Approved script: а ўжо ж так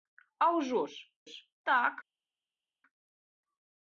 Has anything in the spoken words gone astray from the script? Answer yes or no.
yes